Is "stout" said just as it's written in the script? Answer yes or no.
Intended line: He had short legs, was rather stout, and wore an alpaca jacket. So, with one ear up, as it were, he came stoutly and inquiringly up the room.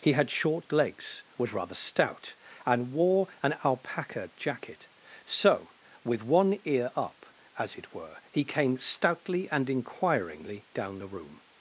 yes